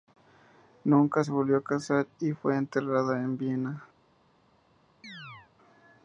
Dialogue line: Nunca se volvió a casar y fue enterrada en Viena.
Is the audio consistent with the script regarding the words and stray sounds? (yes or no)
no